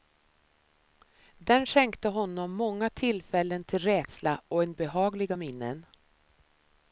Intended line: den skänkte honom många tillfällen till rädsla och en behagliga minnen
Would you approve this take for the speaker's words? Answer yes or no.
yes